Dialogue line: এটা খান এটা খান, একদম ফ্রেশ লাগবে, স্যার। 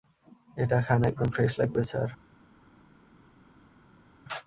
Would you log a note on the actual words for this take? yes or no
yes